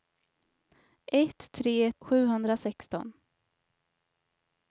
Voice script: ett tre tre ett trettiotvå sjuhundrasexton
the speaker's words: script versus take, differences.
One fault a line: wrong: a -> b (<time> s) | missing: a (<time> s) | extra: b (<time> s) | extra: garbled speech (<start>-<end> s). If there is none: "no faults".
missing: tre ett trettiotvå (1.9 s)